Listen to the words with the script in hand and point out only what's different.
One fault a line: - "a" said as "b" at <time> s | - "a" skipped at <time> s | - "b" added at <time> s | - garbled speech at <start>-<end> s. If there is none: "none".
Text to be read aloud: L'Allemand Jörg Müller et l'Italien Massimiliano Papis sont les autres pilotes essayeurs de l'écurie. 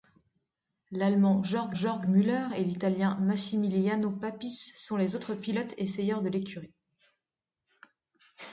- "Jörg" added at 1.7 s